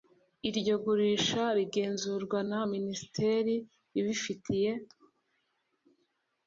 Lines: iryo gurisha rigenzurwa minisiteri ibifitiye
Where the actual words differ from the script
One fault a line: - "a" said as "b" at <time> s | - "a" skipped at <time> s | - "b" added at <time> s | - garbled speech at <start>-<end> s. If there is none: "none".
- "na" added at 2.5 s